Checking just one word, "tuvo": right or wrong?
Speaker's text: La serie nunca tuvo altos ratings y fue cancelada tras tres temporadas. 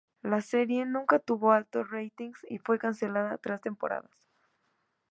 right